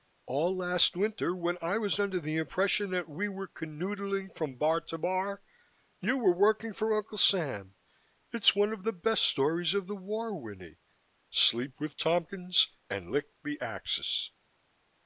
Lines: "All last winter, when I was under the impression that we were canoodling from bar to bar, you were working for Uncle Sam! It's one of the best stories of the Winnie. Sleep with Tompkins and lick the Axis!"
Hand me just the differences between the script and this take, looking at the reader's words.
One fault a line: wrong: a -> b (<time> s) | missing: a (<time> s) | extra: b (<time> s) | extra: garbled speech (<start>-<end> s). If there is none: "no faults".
extra: war (9.9 s)